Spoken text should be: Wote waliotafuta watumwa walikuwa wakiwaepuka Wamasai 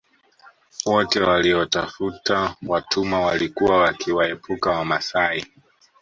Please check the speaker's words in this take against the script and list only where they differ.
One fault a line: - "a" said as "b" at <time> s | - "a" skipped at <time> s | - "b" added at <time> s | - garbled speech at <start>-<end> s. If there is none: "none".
none